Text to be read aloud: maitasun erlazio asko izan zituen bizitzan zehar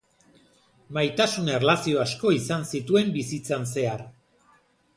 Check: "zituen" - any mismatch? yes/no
no